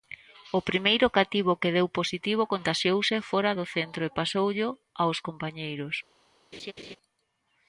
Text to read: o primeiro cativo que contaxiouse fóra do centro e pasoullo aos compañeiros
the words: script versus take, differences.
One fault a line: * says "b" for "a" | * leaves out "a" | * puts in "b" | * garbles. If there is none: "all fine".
* puts in "deu positivo"